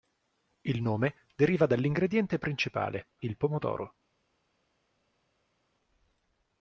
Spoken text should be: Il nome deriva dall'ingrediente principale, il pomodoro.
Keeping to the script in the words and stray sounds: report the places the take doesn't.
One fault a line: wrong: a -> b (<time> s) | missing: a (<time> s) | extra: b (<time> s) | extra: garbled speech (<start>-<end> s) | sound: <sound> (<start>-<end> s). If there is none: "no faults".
no faults